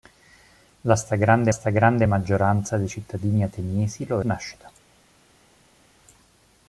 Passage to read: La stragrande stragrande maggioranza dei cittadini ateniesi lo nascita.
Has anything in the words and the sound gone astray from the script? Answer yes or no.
no